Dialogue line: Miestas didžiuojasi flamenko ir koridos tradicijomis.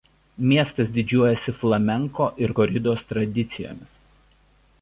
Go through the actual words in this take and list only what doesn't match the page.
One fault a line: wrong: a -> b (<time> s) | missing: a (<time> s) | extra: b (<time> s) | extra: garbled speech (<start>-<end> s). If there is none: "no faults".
no faults